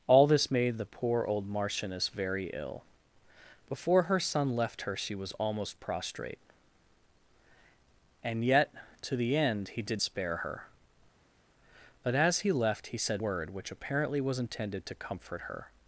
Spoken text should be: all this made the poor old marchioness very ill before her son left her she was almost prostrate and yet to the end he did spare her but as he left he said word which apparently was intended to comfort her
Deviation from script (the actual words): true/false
false